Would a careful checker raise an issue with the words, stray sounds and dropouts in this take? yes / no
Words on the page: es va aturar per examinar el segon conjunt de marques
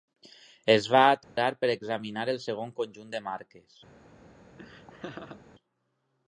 yes